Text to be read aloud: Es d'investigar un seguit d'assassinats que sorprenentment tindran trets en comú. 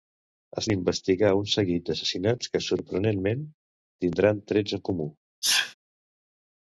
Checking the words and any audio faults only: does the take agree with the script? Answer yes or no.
no